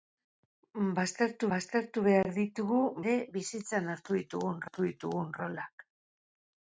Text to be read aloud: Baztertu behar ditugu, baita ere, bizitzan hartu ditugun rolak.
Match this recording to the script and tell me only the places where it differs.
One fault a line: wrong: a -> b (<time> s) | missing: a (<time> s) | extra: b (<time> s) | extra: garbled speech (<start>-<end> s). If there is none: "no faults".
extra: baztertu (1.5 s)
missing: baita (2.8 s)
extra: hartu ditugun (4.7 s)